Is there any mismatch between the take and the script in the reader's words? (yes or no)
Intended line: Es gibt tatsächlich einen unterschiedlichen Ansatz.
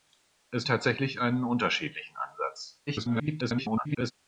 yes